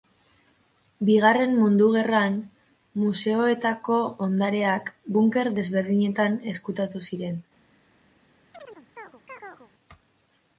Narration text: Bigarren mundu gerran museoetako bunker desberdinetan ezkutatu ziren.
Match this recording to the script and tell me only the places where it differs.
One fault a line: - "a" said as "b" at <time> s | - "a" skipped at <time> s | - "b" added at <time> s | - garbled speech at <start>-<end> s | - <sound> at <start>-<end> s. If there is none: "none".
- "ondareak" added at 4.3 s
- chirp at 8.5-9.7 s